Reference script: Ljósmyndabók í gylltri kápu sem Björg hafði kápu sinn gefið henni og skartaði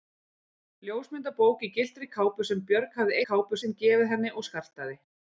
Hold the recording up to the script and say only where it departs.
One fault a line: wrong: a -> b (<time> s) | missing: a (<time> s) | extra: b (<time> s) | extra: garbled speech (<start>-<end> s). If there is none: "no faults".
no faults